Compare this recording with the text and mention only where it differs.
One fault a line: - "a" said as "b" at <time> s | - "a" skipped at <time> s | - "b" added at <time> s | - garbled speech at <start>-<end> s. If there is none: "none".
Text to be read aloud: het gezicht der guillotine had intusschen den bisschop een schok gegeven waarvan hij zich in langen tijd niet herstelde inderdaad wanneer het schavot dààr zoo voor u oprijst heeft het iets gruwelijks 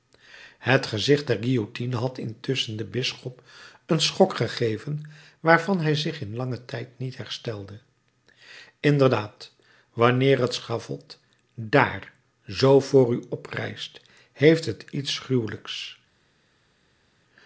none